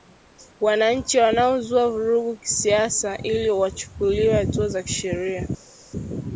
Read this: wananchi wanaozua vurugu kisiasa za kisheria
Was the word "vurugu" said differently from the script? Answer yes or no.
no